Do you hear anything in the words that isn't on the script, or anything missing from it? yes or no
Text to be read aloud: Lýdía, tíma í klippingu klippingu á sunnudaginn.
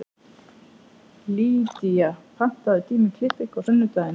yes